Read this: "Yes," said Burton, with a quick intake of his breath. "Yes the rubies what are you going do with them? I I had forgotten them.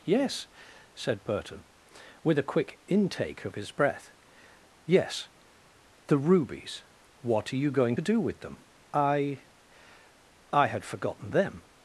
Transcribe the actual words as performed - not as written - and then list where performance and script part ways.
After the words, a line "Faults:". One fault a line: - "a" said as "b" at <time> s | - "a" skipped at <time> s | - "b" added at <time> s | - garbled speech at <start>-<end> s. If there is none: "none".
"Yes," said Burton, with a quick intake of his breath. "Yes the rubies what are you going do with them? I I had forgotten them.
Faults:
none